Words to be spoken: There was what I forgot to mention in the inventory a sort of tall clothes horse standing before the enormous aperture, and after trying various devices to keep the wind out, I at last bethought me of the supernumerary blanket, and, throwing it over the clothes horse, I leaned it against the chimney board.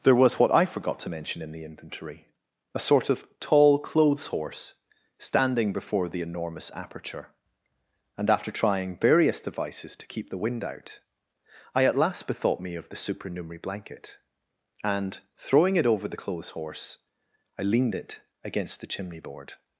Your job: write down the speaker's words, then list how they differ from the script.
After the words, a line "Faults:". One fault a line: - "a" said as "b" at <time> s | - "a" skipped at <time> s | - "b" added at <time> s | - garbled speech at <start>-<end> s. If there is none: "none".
There was what I forgot to mention in the inventory a sort of tall clothes horse standing before the enormous aperture, and after trying various devices to keep the wind out, I at last bethought me of the supernumerary blanket, and, throwing it over the clothes horse, I leaned it against the chimney board.
Faults:
none